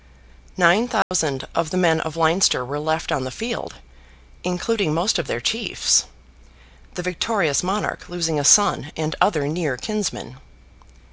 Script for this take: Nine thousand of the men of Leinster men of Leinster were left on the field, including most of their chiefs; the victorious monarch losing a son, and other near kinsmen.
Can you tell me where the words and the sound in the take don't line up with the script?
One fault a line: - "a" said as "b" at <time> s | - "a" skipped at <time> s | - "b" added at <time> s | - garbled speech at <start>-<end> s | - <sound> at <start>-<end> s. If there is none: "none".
- dropout at 1.0-1.1 s
- "men of Leinster" skipped at 2.6 s